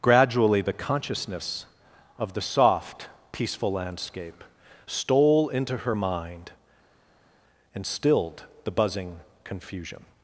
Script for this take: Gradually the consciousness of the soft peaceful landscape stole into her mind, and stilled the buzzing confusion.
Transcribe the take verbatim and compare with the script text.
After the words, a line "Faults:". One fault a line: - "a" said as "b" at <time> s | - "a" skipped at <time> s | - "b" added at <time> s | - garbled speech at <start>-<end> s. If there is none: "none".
Gradually the consciousness of the soft peaceful landscape stole into her mind, and stilled the buzzing confusion.
Faults:
none